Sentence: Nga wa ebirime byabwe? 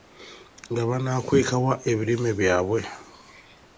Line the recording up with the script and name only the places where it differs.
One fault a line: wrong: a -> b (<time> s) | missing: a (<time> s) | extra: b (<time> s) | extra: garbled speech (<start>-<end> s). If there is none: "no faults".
extra: banaakweka (0.9 s)